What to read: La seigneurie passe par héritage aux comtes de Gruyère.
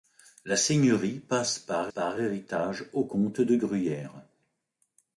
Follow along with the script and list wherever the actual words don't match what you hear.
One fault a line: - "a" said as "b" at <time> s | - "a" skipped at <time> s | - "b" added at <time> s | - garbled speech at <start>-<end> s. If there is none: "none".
- "par" added at 1.9 s